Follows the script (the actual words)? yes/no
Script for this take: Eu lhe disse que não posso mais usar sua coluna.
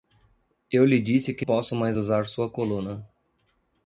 no